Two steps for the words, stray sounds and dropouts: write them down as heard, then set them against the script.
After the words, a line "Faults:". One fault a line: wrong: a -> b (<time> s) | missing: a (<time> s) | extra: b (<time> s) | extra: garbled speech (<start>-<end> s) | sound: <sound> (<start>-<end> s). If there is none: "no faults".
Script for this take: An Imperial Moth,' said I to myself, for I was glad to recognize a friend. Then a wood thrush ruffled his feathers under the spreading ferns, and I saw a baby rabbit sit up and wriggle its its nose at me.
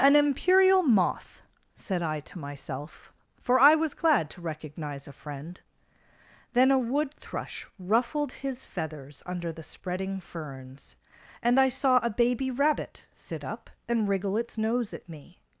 An Imperial Moth,' said I to myself, for I was glad to recognize a friend. Then a wood thrush ruffled his feathers under the spreading ferns, and I saw a baby rabbit sit up and wriggle its nose at me.
Faults:
missing: its (14.6 s)